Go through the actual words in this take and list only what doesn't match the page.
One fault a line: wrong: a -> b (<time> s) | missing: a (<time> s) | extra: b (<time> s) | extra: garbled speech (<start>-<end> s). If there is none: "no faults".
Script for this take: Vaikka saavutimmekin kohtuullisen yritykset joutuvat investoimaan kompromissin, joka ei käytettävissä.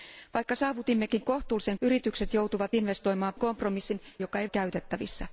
no faults